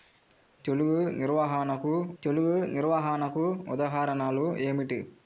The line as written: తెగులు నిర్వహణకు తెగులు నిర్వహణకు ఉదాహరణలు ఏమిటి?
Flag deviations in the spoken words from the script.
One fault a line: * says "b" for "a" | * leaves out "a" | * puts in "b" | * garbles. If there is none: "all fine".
all fine